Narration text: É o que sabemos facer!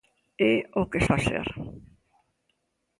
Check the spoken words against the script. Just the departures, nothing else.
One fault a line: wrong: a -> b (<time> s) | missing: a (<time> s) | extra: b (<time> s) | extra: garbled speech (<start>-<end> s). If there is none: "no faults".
missing: sabemos (1.0 s)